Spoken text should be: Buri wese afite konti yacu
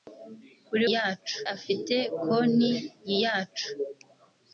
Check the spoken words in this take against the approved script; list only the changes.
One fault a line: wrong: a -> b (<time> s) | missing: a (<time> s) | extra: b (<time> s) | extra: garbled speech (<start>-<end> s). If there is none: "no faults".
wrong: wese -> yacu (0.9 s)